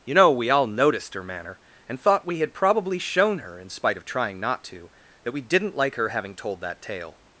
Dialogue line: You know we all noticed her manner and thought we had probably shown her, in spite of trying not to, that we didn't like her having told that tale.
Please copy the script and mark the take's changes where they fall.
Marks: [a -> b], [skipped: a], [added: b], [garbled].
You know we all noticed her manner and thought we had probably shown her, in spite of trying not to, that we didn't like her having told that tale.